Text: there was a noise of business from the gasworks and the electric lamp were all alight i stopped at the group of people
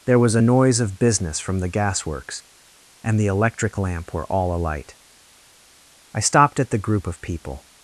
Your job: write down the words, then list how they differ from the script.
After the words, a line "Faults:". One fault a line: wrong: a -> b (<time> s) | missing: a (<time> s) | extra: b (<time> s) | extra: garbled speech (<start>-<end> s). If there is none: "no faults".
there was a noise of business from the gasworks and the electric lamp were all alight i stopped at the group of people
Faults:
no faults